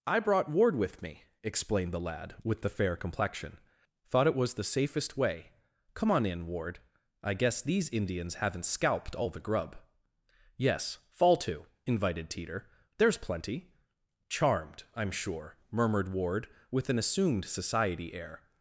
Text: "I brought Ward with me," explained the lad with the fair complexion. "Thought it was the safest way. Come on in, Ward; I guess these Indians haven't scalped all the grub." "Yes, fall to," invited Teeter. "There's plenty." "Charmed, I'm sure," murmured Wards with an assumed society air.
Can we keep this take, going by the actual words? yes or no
no